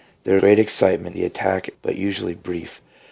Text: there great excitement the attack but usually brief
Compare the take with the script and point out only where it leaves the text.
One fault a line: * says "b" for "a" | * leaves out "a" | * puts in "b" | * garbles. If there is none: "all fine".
all fine